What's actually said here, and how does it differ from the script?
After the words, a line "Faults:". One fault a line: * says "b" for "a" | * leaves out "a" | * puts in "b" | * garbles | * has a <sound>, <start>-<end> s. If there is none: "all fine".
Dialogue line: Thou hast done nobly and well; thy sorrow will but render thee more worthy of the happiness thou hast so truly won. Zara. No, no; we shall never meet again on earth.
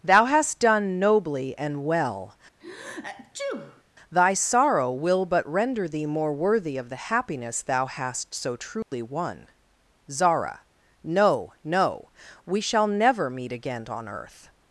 Thou hast done nobly and well; thy sorrow will but render thee more worthy of the happiness thou hast so truly won. Zara. No, no; we shall never meet again on earth.
Faults:
* has a sneeze, 2.6-3.8 s
* has a dropout, 8.8-8.9 s